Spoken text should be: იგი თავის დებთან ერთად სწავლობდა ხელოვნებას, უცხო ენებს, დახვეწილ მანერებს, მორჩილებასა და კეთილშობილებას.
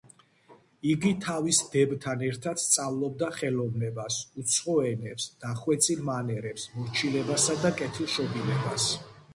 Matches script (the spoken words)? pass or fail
pass